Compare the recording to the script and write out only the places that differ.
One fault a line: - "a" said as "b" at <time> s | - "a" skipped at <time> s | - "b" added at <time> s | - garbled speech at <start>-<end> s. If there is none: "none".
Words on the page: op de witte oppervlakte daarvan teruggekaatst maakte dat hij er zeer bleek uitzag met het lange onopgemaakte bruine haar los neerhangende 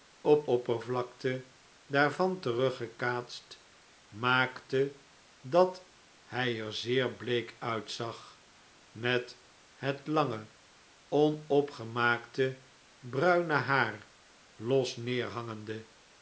- "de witte" skipped at 0.5 s